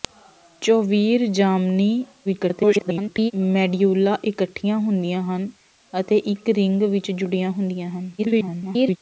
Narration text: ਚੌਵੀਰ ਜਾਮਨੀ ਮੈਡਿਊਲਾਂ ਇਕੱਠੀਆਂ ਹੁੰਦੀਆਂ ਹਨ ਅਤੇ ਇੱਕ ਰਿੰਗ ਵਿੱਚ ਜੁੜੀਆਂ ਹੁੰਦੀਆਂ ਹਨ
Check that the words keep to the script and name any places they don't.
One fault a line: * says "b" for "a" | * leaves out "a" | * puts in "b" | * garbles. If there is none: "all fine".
* garbles
* garbles